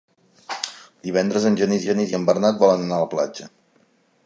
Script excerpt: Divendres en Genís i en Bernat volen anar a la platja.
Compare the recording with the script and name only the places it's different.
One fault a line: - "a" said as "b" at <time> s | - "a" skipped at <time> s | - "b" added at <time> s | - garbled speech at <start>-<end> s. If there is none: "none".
- "Genís" added at 1.9 s